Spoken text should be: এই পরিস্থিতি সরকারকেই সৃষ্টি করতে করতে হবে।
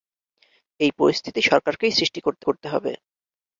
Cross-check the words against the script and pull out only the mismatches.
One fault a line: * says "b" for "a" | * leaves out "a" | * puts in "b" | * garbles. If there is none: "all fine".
all fine